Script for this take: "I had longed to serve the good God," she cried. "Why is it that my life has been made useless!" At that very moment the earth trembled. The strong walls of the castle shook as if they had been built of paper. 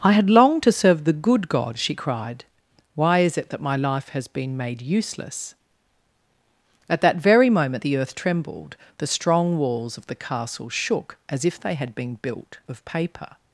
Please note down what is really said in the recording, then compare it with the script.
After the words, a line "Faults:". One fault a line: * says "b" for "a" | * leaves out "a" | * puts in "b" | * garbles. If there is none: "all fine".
"I had longed to serve the good God," she cried. "Why is it that my life has been made useless!" At that very moment the earth trembled. The strong walls of the castle shook as if they had been built of paper.
Faults:
all fine